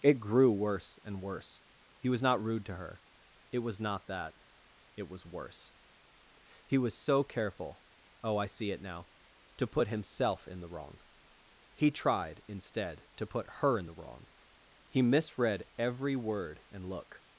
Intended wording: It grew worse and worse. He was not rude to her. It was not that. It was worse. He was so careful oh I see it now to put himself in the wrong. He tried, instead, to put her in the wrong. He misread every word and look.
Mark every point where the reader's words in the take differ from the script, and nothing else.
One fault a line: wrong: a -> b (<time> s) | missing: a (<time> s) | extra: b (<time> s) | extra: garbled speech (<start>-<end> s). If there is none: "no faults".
no faults